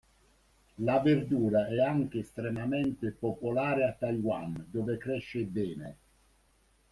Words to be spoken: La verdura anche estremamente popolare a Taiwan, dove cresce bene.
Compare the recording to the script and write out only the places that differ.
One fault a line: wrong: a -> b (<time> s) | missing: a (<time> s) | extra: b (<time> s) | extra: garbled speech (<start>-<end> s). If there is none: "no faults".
extra: è (1.7 s)